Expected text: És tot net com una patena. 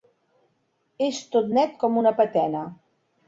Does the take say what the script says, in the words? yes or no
yes